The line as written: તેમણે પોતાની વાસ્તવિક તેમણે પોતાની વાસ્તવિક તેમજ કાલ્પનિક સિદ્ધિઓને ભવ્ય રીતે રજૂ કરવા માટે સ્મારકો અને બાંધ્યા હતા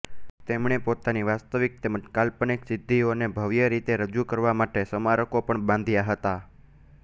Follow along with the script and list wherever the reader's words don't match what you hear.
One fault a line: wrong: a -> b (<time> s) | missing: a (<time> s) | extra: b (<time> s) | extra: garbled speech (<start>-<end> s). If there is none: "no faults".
missing: તેમણે પોતાની વાસ્તવિક (1.8 s)
wrong: અને -> પણ (5.5 s)